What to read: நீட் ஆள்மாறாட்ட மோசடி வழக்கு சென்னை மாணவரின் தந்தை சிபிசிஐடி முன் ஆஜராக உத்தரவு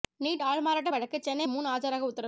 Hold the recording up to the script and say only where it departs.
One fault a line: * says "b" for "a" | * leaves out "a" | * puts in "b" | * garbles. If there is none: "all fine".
* leaves out "மோசடி"
* leaves out "மாணவரின் தந்தை சிபிசிஐடி"